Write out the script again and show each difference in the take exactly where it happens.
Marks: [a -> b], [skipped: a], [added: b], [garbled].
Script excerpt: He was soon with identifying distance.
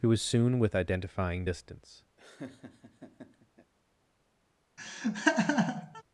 He was soon with identifying distance.